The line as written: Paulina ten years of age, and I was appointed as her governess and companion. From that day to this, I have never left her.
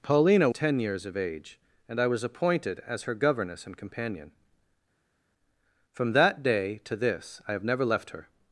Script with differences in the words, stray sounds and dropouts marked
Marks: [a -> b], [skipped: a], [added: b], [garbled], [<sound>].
Paulina ten years of age, and I was appointed as her governess and companion. From that day to this, I have never left her.